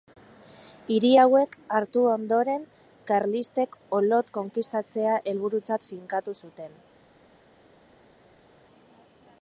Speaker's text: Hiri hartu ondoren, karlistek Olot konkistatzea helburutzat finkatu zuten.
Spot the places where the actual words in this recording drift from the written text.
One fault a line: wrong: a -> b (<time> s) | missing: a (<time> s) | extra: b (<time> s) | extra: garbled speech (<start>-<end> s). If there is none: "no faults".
extra: hauek (1.2 s)